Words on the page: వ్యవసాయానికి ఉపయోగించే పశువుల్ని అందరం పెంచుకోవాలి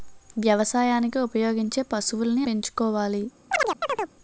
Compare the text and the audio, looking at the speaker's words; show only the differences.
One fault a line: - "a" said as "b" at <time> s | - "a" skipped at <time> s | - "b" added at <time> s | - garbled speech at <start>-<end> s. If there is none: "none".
- "అందరం" skipped at 2.5 s